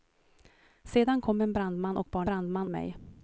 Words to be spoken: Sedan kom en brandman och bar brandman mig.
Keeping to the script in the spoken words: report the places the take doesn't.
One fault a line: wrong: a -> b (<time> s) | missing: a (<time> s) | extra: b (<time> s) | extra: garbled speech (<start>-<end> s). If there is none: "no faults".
no faults